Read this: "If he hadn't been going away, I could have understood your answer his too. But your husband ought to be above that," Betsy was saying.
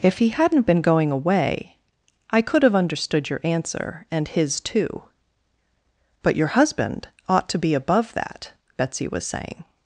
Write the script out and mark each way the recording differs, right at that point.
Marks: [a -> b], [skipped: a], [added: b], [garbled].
"If he hadn't been going away, I could have understood your answer [added: and] his too. But your husband ought to be above that," Betsy was saying.